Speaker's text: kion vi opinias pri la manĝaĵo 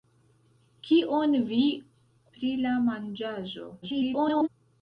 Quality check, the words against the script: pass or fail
fail